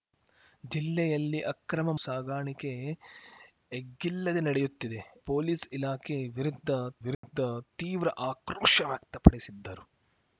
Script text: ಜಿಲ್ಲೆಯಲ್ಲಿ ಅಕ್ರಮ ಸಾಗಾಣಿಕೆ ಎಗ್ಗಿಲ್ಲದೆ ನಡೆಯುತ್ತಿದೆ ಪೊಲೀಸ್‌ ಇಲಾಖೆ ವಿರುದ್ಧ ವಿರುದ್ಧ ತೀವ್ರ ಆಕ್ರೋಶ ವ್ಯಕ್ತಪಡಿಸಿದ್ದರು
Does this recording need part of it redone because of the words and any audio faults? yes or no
yes